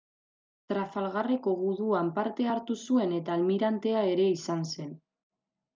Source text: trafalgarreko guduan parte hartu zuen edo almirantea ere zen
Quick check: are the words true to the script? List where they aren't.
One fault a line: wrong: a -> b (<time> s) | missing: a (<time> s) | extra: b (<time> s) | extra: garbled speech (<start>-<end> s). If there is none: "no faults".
wrong: edo -> eta (3.2 s)
extra: izan (4.4 s)